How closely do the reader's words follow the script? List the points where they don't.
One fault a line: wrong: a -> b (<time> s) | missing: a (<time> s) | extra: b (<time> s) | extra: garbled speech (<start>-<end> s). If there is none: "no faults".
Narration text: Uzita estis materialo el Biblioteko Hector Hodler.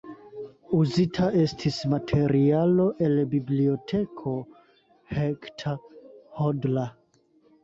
no faults